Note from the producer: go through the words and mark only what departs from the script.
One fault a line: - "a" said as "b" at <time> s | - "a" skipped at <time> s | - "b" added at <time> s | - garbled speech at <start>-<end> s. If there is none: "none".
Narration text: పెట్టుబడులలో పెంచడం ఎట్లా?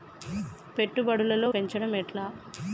none